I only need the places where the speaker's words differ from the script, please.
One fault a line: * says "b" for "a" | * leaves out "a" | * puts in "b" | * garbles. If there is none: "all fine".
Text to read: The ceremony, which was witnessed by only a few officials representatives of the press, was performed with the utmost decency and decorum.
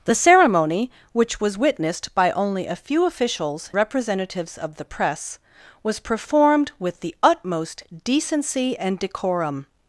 all fine